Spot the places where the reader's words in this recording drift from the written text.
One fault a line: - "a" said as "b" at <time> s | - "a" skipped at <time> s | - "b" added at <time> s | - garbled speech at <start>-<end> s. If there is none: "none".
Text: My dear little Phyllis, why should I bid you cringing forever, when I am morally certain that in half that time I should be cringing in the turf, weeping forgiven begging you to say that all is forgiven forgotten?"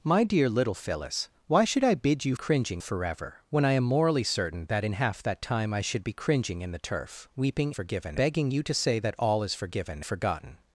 none